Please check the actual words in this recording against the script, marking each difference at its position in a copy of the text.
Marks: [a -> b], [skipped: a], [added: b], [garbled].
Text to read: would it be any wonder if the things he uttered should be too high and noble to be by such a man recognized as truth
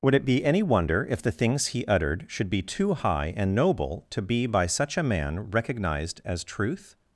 would it be any wonder if the things he uttered should be too high and noble to be by such a man recognized as truth